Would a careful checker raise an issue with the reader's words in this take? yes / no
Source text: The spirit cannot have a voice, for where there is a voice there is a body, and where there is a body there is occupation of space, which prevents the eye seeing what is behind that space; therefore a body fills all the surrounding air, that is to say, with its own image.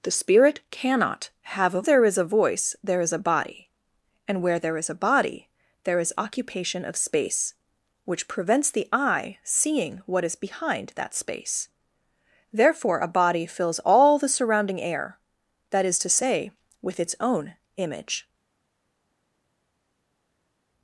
yes